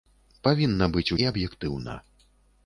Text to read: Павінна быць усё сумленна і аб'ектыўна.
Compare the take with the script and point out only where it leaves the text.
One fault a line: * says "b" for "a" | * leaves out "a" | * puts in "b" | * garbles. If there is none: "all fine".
* leaves out "усё сумленна"